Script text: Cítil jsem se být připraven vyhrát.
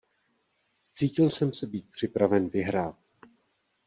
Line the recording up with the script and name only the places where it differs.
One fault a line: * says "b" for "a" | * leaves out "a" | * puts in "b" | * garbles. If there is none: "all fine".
all fine